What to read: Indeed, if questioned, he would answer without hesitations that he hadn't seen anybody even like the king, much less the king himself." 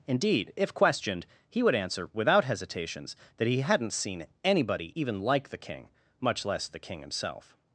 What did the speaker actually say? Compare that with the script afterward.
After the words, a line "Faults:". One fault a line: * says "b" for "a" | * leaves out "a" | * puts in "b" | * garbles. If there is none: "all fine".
Indeed, if questioned, he would answer without hesitations that he hadn't seen anybody even like the king, much less the king himself."
Faults:
all fine